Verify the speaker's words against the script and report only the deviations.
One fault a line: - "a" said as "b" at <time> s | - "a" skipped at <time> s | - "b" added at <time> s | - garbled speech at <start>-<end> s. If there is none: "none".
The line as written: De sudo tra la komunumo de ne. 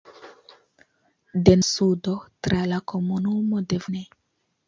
none